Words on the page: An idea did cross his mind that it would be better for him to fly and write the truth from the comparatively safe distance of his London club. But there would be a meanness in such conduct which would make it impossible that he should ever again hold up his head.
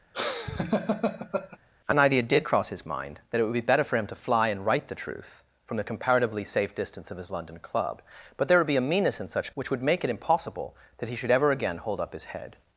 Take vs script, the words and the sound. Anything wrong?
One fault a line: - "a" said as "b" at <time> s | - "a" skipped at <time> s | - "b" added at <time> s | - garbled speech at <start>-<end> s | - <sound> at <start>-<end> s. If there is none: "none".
- laugh at 0.1-1.6 s
- "conduct" skipped at 9.5 s